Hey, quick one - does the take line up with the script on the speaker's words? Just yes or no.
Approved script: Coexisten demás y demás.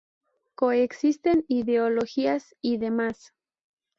no